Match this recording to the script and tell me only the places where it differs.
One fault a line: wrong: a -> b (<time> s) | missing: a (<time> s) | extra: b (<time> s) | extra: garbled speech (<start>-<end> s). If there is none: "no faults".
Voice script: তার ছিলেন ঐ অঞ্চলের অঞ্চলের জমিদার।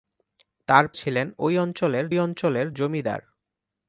no faults